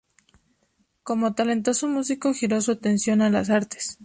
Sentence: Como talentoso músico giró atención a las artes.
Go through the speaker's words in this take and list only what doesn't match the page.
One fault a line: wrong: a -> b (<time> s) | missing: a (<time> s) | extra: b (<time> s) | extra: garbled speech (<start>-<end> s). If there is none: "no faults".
extra: su (2.6 s)